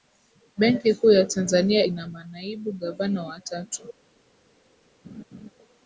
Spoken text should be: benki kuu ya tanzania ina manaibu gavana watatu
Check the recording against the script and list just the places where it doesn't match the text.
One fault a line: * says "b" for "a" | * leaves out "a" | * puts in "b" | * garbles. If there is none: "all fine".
all fine